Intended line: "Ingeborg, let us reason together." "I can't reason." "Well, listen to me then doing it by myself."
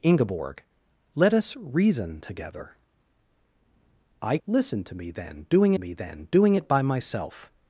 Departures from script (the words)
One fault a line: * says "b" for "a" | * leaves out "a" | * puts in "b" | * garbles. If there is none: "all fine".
* says "listen to me then doing" for "can't reason Well listen to"